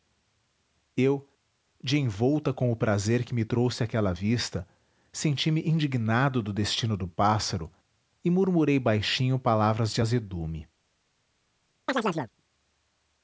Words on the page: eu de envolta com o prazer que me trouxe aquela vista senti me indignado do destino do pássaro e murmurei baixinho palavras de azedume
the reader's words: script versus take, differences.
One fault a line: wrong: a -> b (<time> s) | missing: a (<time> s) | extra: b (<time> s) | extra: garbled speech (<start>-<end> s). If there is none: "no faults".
no faults